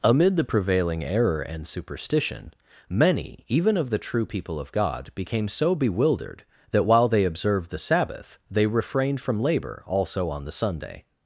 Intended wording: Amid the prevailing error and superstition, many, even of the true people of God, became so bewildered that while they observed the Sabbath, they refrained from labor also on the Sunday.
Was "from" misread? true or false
false